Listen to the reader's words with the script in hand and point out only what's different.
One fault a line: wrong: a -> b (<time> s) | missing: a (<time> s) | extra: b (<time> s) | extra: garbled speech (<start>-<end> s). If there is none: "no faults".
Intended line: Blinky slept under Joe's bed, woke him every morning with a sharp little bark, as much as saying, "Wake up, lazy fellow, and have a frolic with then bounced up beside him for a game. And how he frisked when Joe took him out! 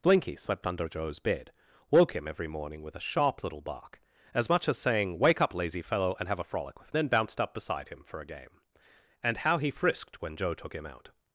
no faults